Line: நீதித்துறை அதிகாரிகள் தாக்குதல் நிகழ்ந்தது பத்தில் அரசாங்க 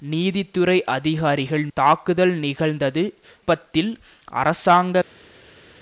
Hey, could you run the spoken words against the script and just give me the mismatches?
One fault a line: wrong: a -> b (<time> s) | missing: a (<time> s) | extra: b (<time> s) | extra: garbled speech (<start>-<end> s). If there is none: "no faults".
no faults